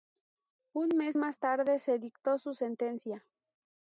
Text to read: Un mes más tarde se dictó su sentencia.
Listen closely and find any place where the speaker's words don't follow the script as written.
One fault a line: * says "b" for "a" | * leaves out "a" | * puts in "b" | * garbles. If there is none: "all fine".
all fine